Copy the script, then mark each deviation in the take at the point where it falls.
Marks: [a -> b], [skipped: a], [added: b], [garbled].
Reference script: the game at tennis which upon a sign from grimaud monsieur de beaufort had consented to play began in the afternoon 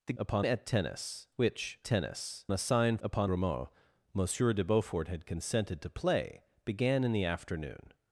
the [game -> upon] at tennis which [upon -> tennis] a sign [from -> upon] grimaud monsieur de beaufort had consented to play began in the afternoon